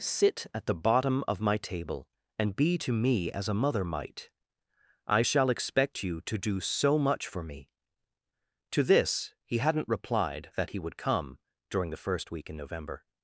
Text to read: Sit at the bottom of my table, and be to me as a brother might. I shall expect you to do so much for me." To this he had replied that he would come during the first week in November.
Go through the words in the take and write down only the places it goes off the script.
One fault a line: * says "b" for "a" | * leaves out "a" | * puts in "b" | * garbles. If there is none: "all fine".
* says "mother" for "brother"
* says "hadn't" for "had"